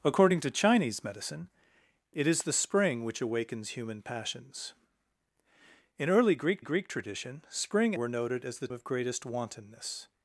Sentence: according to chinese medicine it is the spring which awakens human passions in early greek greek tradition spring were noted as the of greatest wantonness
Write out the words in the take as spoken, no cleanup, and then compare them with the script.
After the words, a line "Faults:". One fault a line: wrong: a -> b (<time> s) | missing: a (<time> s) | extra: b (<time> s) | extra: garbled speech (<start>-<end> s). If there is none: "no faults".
according to chinese medicine it is the spring which awakens human passions in early greek greek tradition spring were noted as the of greatest wantonness
Faults:
no faults